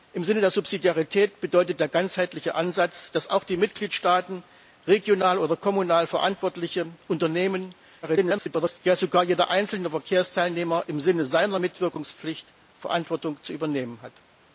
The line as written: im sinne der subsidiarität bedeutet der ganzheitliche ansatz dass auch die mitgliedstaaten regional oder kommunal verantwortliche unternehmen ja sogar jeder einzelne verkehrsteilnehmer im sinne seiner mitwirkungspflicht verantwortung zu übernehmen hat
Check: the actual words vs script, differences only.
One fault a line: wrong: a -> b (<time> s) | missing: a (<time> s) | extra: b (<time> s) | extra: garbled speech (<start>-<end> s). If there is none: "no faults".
extra: garbled speech (8.0-8.8 s)